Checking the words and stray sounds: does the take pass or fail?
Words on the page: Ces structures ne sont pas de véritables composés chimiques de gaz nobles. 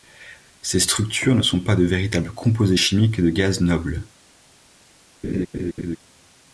fail